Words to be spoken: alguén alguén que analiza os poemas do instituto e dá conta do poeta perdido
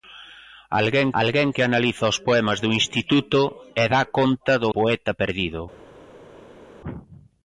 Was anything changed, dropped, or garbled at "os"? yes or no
no